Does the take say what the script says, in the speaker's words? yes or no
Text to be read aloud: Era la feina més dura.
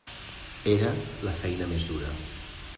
yes